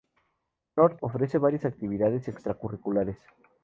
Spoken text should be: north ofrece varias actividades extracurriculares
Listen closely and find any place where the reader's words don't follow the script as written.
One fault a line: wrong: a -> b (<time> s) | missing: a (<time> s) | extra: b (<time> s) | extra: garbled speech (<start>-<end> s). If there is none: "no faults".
no faults